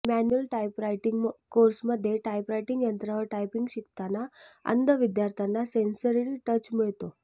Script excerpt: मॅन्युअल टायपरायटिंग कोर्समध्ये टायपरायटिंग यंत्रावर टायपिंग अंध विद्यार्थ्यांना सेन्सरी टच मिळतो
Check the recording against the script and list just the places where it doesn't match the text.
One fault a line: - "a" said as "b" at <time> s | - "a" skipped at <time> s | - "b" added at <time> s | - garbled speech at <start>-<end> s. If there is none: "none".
- "शिकताना" added at 3.7 s